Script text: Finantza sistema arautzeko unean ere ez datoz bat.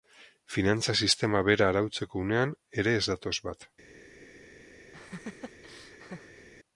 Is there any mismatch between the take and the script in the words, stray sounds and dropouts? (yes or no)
yes